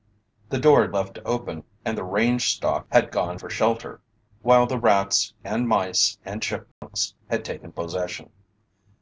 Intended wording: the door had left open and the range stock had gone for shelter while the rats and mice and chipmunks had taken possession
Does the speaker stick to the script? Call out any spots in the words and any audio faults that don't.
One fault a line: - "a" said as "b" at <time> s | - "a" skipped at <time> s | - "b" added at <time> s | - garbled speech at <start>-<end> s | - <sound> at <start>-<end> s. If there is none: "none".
- dropout at 6.7-6.8 s